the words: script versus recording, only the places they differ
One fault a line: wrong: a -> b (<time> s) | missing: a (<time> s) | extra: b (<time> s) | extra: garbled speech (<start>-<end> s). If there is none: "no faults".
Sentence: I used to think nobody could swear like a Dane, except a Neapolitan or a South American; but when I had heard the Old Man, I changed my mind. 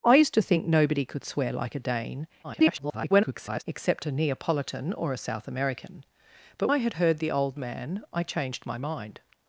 extra: garbled speech (2.4-3.6 s)
missing: when (6.7 s)